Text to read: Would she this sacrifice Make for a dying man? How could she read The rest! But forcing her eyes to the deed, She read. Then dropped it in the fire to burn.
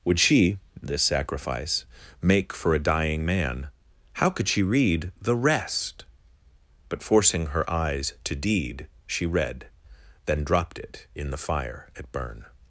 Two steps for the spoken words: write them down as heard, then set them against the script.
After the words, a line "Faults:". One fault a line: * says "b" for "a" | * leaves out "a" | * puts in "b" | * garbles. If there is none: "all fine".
Would she this sacrifice Make for a dying man? How could she read The rest! But forcing her eyes to deed, She read. Then dropped it in the fire at burn.
Faults:
* leaves out "the"
* says "at" for "to"